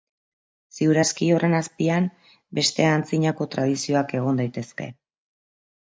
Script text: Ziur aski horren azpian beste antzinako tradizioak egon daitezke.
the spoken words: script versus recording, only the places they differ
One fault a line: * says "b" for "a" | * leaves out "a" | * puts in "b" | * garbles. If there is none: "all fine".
all fine